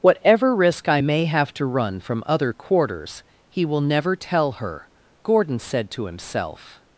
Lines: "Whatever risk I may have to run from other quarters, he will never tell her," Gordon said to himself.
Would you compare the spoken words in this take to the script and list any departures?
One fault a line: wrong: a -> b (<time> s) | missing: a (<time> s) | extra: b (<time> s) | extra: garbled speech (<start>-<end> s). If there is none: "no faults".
no faults